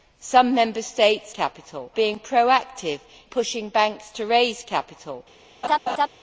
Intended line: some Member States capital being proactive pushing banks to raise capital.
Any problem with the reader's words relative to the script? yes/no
no